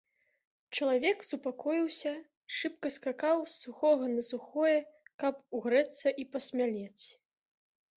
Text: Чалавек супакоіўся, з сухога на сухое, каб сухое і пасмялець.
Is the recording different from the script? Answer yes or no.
yes